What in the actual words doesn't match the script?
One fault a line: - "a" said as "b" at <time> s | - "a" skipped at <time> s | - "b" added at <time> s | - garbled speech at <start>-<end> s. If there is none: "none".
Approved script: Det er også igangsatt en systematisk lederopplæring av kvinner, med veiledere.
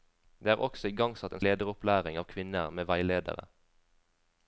- "systematisk" skipped at 1.4 s